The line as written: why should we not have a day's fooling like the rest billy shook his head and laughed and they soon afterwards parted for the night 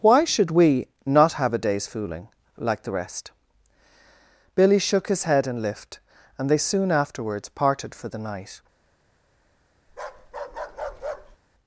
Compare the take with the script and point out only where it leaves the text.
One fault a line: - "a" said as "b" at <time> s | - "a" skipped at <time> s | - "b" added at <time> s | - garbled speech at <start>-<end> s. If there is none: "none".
- "laughed" said as "lift" at 5.6 s